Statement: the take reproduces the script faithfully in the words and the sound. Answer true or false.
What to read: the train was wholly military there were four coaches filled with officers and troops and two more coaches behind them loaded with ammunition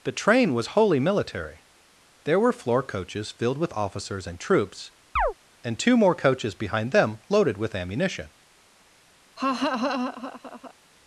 false